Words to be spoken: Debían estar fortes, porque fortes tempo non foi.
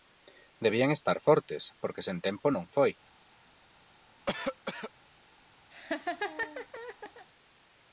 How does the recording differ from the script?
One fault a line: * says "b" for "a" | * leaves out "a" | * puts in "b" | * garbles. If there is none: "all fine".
* says "sen" for "fortes"